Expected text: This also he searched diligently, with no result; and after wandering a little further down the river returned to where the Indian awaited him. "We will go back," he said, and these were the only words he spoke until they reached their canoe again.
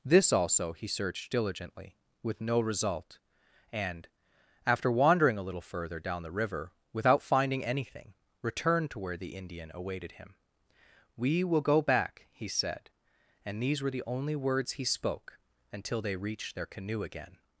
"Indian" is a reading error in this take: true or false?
false